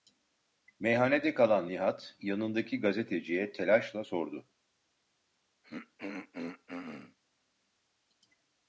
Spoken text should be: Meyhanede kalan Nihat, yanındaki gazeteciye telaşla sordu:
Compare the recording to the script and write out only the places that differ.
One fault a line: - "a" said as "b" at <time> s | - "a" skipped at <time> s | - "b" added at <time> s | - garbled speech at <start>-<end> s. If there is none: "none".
none